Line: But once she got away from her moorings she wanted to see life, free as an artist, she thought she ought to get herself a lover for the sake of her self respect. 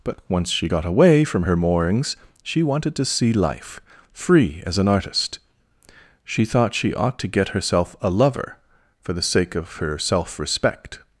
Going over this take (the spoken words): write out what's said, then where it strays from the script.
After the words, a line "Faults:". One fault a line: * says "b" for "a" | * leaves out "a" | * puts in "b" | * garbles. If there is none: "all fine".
But once she got away from her moorings she wanted to see life, free as an artist, she thought she ought to get herself a lover for the sake of her self respect.
Faults:
all fine